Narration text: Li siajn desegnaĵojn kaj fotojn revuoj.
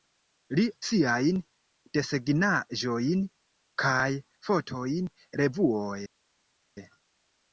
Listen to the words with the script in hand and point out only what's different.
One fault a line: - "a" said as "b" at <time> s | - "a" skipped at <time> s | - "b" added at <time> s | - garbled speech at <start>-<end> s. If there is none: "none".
none